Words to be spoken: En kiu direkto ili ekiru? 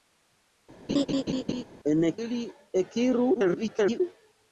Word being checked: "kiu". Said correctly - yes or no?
no